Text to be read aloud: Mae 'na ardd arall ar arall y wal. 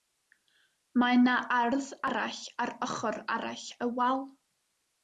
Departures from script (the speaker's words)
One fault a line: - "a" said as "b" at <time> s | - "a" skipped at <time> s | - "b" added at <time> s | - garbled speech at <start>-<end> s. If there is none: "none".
- "ochr" added at 2.9 s